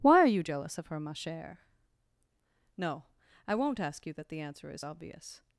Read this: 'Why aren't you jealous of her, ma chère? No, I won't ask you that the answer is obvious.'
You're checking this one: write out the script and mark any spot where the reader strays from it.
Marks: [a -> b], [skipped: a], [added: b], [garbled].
'Why [aren't -> are] you jealous of her, ma chère? No, I won't ask you that the answer is obvious.'